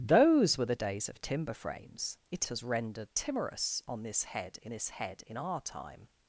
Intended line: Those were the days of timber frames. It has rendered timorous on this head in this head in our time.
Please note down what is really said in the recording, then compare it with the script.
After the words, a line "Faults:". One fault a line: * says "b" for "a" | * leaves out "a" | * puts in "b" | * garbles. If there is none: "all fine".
Those were the days of timber frames. It has rendered timorous on this head in this head in our time.
Faults:
all fine